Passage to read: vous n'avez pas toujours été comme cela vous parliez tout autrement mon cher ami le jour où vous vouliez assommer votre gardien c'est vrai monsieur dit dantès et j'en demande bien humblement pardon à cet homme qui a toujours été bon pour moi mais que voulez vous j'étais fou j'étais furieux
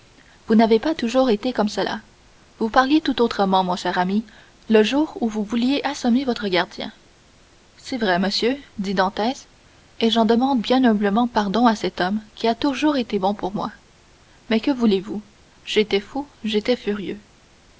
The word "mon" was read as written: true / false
true